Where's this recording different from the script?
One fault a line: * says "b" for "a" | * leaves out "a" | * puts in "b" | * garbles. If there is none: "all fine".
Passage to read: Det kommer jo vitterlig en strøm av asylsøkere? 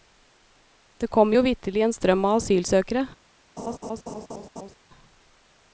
all fine